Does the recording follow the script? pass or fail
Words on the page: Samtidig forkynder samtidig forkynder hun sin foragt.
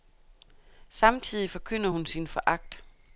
fail